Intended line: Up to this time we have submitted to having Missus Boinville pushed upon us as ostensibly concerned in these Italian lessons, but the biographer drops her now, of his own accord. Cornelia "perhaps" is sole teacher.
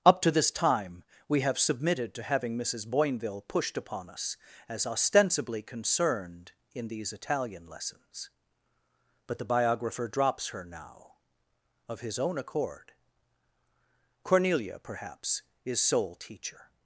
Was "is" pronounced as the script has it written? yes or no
yes